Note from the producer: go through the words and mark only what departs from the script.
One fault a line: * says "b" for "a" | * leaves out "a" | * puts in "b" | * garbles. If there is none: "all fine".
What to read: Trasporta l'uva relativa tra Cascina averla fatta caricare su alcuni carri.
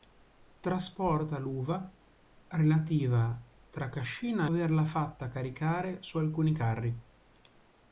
all fine